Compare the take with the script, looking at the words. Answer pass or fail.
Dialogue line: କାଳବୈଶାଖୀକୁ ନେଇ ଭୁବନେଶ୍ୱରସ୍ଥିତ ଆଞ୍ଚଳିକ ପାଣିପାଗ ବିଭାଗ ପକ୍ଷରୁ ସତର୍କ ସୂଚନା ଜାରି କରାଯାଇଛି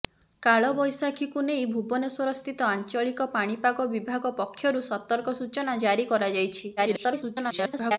fail